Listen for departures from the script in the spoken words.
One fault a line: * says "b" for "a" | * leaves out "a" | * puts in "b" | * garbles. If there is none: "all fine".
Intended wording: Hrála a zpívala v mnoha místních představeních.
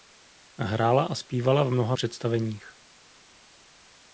* leaves out "místních"